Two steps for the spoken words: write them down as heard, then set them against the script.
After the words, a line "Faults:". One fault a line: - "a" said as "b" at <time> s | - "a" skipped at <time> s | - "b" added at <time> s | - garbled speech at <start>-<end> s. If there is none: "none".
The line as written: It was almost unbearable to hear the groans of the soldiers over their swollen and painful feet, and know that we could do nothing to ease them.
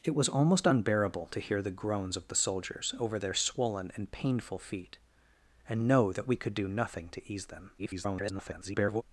It was almost unbearable to hear the groans of the soldiers over their swollen and painful feet, and know that we could do nothing to ease them. [garbled]
Faults:
- garbled speech at 7.8-9.0 s